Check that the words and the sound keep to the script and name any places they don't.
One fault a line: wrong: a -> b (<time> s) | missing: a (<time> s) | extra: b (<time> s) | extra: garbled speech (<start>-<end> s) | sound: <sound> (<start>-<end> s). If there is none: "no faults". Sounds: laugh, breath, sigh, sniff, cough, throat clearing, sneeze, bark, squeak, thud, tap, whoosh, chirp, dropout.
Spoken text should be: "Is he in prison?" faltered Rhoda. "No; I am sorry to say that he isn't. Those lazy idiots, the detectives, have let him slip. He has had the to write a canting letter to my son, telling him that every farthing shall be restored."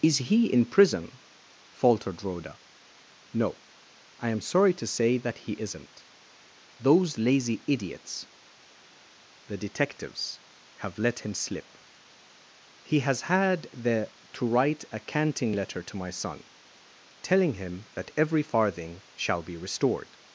no faults